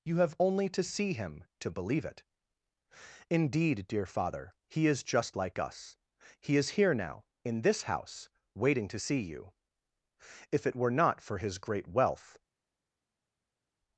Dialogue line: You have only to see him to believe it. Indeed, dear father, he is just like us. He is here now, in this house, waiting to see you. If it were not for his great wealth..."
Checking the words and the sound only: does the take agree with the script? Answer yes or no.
yes